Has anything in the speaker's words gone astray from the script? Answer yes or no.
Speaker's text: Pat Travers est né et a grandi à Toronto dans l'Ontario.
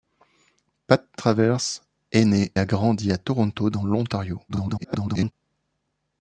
yes